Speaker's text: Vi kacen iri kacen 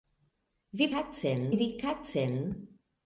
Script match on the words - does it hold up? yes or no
yes